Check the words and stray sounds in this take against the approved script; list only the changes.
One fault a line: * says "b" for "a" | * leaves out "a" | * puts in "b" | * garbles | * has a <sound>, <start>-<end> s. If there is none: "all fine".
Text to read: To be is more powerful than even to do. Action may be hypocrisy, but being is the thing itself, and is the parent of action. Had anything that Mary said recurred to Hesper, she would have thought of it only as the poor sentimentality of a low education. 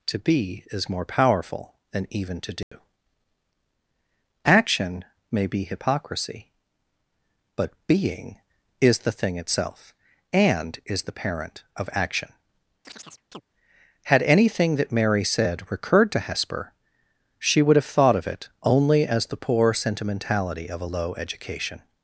* has a dropout, 2.6-2.7 s
* has a chirp, 12.8-13.4 s